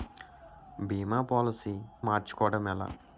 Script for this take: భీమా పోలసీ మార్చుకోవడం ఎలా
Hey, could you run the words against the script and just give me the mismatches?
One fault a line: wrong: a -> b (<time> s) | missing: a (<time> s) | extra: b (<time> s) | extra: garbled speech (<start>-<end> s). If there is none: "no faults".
no faults